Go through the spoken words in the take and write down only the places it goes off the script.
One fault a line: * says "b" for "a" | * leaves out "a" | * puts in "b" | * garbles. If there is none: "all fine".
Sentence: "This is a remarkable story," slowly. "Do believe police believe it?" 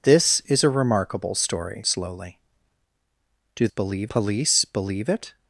all fine